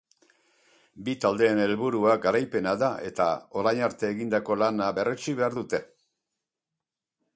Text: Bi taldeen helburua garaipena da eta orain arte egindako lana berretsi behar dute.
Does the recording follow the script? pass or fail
pass